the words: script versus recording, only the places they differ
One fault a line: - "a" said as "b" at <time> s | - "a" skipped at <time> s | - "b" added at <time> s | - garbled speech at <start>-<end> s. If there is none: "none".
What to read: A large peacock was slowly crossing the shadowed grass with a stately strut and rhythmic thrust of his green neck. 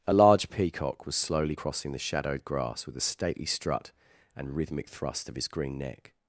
none